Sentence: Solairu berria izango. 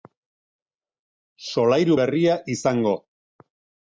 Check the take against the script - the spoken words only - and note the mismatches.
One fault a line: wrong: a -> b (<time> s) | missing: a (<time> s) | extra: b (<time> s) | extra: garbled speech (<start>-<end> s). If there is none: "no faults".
no faults